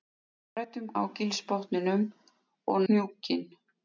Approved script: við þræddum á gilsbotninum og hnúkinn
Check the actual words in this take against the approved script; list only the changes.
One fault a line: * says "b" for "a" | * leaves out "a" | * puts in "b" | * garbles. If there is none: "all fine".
all fine